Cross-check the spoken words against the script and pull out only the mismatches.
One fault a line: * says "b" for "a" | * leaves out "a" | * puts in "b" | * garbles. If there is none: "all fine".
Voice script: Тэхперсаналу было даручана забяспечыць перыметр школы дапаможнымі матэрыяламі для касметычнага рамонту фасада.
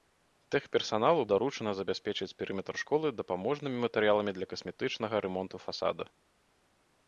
* leaves out "было"